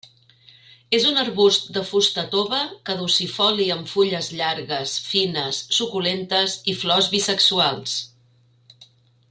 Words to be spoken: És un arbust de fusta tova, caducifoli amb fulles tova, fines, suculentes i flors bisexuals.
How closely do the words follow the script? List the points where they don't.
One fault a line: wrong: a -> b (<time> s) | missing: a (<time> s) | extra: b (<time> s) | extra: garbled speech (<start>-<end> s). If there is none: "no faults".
wrong: tova -> llargues (4.4 s)